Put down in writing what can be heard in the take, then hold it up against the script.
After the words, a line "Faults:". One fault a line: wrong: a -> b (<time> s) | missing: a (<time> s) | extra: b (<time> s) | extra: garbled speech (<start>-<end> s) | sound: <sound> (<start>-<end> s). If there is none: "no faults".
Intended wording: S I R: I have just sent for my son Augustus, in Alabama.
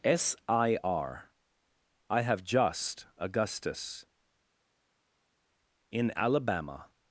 S I R: I have just Augustus, in Alabama.
Faults:
missing: sent for my son (3.1 s)